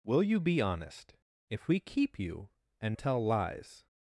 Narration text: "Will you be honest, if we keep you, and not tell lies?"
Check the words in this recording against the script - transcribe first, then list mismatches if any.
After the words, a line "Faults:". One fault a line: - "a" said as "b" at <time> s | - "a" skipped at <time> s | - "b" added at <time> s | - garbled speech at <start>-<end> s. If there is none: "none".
"Will you be honest, if we keep you, and tell lies?"
Faults:
- "not" skipped at 3.0 s